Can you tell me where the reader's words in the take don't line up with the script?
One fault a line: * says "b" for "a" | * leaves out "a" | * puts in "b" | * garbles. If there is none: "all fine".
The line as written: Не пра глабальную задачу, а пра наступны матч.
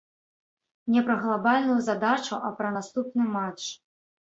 all fine